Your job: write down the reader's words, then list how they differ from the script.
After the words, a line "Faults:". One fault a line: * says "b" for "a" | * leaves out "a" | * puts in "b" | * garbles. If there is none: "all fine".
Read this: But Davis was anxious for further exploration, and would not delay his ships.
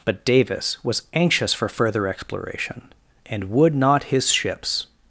But Davis was anxious for further exploration, and would not his ships.
Faults:
* leaves out "delay"